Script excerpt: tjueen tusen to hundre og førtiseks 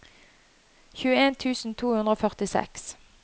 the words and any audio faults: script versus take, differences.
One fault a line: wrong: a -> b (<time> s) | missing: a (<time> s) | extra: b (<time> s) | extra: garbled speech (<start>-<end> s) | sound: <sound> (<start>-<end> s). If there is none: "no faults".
no faults